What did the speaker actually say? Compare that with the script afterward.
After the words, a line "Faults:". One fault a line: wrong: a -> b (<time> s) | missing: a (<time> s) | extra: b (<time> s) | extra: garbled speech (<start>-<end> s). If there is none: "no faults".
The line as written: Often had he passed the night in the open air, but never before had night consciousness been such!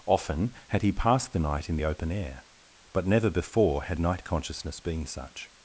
Often had he passed the night in the open air, but never before had night consciousness been such!
Faults:
no faults